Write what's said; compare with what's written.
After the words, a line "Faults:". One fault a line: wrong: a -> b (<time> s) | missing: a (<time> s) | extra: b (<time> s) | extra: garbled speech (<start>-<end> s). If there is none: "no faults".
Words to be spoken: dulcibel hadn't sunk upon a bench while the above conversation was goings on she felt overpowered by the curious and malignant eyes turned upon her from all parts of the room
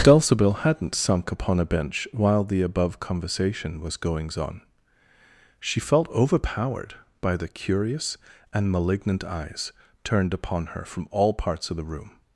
dulcibel hadn't sunk upon a bench while the above conversation was goings on she felt overpowered by the curious and malignant eyes turned upon her from all parts of the room
Faults:
no faults